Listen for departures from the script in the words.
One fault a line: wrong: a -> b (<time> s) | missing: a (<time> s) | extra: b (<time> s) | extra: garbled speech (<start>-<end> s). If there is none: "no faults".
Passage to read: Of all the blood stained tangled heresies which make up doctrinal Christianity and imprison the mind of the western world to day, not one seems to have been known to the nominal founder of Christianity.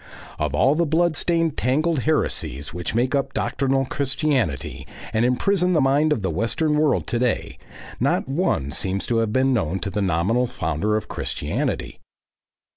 no faults